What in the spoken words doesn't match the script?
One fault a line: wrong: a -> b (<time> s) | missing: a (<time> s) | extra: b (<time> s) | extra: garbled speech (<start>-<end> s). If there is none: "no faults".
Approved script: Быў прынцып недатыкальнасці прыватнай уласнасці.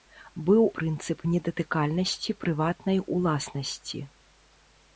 no faults